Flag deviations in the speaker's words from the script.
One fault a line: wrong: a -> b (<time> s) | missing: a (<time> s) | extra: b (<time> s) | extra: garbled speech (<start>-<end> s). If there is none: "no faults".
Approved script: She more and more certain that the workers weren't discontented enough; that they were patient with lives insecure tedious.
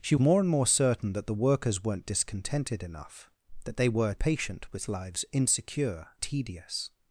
no faults